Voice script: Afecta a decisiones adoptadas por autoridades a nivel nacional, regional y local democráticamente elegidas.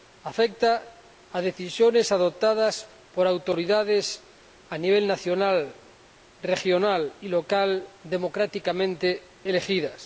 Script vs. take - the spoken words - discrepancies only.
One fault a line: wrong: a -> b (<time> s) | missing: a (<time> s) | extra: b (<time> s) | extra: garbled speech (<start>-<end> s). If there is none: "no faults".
no faults